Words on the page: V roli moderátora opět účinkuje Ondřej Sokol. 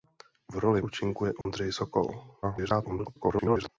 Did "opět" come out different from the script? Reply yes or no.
yes